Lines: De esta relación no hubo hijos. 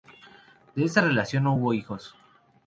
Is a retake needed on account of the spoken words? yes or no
no